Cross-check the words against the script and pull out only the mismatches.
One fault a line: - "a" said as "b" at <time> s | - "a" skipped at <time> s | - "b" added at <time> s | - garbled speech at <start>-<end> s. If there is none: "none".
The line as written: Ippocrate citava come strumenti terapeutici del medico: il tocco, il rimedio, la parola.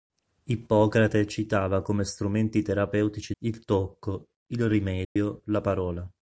- "del medico" skipped at 3.4 s